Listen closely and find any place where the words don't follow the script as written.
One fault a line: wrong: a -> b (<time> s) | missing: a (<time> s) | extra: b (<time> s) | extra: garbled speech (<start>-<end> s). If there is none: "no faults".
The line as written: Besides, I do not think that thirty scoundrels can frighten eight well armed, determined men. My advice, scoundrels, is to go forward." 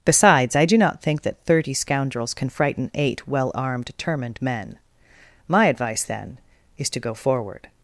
wrong: scoundrels -> then (6.0 s)